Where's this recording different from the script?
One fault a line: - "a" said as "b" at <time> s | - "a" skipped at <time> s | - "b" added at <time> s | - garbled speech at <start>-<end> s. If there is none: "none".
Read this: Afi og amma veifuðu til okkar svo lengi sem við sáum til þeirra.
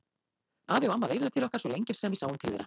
none